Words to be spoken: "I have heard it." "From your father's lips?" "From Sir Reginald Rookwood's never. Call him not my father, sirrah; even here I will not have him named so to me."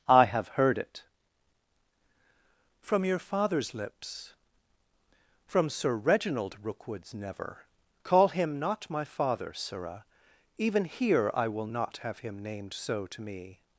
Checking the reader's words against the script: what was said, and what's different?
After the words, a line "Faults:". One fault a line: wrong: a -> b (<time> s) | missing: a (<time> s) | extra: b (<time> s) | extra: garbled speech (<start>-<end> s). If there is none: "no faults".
"I have heard it." "From your father's lips?" "From Sir Reginald Rookwood's never. Call him not my father, sirrah; even here I will not have him named so to me."
Faults:
no faults